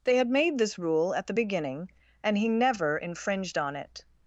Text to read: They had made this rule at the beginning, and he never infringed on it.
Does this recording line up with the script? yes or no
yes